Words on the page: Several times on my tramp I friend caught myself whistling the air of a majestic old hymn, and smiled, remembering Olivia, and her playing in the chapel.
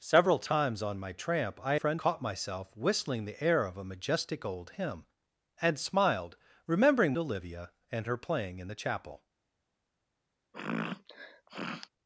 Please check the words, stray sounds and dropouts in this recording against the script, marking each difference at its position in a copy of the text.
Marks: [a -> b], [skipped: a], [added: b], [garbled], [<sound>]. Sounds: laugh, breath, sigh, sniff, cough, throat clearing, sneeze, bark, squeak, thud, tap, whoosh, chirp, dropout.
Several times on my tramp I friend caught myself whistling the air of a majestic old hymn, and smiled, remembering Olivia, and her playing in the chapel. [sniff]